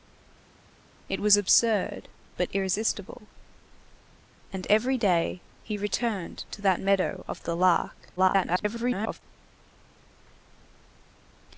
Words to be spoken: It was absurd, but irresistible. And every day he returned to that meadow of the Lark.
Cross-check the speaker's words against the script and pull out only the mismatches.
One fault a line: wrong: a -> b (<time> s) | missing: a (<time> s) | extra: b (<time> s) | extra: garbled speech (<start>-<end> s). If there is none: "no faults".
extra: garbled speech (8.2-9.2 s)